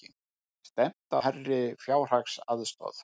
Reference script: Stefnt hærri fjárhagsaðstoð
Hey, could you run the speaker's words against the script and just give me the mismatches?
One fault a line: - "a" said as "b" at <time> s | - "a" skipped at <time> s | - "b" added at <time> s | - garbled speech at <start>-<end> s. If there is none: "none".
none